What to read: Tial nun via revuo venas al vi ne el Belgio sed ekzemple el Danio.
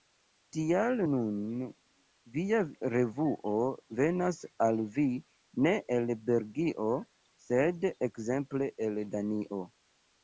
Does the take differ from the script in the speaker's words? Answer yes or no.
no